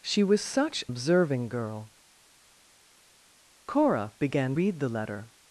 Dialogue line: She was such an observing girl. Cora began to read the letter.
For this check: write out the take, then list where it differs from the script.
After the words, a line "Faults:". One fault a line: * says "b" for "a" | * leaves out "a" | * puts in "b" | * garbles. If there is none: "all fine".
She was such observing girl. Cora began read the letter.
Faults:
* leaves out "an"
* leaves out "to"